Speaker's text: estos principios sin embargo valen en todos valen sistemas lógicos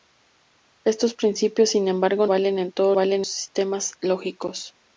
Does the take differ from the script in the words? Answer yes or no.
no